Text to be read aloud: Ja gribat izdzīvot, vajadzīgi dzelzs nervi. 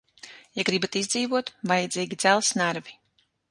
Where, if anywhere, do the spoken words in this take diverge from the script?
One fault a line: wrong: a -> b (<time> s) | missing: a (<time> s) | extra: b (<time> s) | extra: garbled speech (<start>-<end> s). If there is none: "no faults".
no faults